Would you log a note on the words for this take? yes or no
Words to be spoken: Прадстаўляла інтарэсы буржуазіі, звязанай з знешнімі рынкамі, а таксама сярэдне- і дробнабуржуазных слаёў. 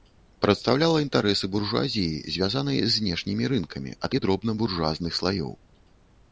yes